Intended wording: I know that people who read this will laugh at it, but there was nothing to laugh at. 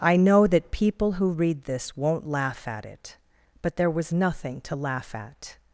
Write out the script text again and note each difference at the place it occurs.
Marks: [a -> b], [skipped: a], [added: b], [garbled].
I know that people who read this [will -> won't] laugh at it, but there was nothing to laugh at.